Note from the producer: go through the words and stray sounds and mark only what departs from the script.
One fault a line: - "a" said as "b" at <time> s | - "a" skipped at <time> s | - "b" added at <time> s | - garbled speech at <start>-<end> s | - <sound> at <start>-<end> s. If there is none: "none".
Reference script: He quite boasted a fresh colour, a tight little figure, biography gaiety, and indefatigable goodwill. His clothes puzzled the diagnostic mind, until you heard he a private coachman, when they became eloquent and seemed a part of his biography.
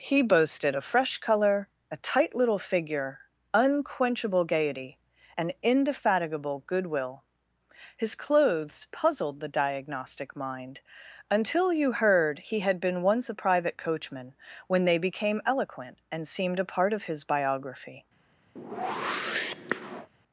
- "quite" skipped at 0.2 s
- "biography" said as "unquenchable" at 3.5 s
- "had been once" added at 12.6 s
- whoosh at 18.6-20.1 s